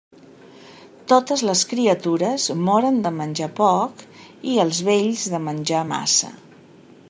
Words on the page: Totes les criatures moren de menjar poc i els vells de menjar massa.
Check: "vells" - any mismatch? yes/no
no